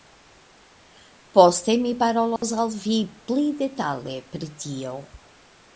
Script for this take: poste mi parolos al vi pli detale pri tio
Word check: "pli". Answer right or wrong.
right